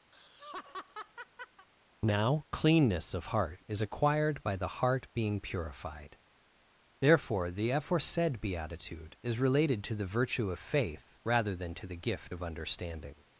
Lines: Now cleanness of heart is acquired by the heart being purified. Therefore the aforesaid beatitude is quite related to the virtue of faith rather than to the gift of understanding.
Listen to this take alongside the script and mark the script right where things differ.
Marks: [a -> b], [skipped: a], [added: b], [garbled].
Now cleanness of heart is acquired by the heart being purified. Therefore the aforesaid beatitude is [skipped: quite] related to the virtue of faith rather than to the gift of understanding.